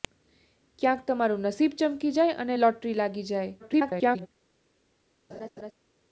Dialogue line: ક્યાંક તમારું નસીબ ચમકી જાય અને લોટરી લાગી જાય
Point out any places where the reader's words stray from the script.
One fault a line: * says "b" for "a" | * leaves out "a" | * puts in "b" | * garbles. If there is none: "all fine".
* garbles